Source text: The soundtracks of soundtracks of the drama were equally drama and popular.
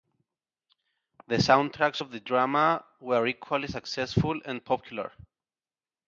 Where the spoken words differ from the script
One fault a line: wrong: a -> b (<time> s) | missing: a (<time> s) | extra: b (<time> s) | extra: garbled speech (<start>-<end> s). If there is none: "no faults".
missing: soundtracks of (2.1 s)
wrong: drama -> successful (3.7 s)